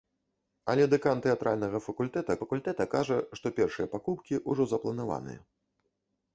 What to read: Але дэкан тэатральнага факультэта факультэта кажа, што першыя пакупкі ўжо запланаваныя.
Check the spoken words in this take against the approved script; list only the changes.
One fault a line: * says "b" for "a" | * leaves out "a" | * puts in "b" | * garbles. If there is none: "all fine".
all fine